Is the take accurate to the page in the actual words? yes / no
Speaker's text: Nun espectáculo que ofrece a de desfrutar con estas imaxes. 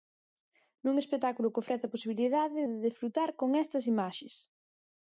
no